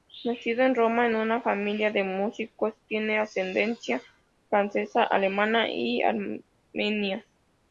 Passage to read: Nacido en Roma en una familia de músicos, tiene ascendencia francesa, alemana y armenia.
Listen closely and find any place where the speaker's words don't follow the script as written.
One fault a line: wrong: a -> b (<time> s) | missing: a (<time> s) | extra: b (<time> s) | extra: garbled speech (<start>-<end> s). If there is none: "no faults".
no faults